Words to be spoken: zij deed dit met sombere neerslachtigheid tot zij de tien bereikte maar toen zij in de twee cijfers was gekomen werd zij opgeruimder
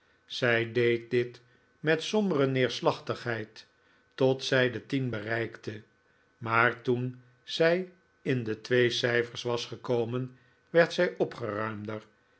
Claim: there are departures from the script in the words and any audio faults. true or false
false